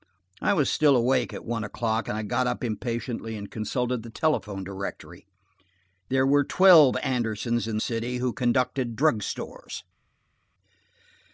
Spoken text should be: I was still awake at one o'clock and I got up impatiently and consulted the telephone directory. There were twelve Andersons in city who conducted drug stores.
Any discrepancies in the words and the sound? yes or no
no